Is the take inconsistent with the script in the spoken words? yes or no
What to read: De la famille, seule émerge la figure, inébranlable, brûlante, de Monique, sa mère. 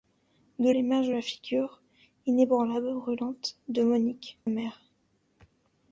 yes